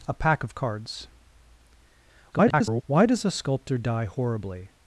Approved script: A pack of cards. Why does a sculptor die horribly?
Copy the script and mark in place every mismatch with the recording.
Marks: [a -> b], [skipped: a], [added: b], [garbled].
A pack of cards. [garbled] Why does a sculptor die horribly?